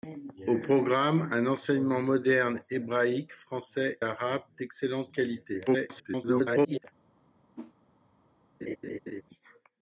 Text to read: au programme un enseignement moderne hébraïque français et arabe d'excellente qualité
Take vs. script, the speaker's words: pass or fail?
fail